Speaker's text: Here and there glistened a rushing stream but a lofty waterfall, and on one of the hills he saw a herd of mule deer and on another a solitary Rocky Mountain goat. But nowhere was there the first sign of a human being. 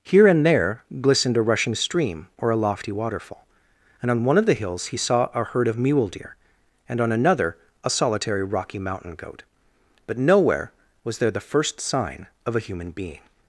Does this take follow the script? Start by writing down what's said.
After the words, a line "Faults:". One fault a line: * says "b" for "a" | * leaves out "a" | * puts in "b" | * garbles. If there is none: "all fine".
Here and there glistened a rushing stream or a lofty waterfall, and on one of the hills he saw a herd of mule deer and on another a solitary Rocky Mountain goat. But nowhere was there the first sign of a human being.
Faults:
* says "or" for "but"